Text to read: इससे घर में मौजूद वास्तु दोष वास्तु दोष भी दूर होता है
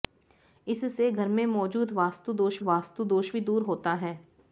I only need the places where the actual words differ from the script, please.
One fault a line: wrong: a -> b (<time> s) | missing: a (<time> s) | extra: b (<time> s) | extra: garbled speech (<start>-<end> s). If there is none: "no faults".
no faults